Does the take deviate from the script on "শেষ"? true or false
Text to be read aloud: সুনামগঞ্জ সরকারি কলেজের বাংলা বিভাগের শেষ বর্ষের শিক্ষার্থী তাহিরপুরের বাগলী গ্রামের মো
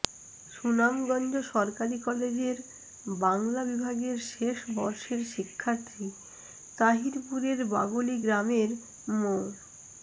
false